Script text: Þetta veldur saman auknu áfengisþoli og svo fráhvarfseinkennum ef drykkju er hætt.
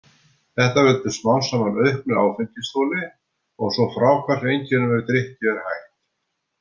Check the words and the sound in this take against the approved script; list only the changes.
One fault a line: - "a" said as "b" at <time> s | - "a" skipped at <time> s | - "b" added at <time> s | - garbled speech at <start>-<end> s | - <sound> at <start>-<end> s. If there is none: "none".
- "smám" added at 1.2 s